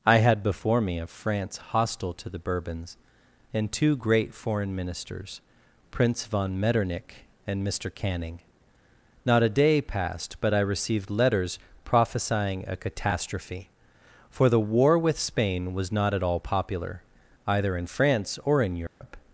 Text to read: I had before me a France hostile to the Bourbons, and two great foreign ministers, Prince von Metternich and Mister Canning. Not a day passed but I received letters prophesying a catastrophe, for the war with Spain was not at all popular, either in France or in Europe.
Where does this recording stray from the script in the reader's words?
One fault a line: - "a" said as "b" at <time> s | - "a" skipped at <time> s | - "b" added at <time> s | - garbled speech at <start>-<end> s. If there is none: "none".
none